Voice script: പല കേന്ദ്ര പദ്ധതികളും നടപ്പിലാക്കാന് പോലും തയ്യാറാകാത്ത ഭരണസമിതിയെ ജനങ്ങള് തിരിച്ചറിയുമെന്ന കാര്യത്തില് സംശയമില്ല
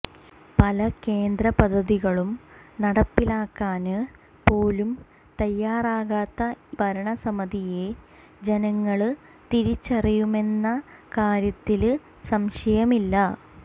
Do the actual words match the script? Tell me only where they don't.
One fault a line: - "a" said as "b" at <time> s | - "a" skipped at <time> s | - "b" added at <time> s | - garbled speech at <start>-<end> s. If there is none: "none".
none